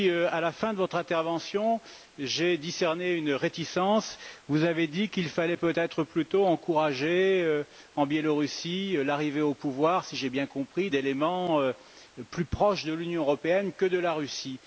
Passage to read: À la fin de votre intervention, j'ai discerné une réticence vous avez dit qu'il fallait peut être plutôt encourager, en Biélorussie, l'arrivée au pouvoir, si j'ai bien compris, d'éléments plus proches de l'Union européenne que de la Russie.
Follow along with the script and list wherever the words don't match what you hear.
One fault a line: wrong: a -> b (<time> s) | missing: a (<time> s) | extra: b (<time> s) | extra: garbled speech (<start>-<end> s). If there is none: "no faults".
no faults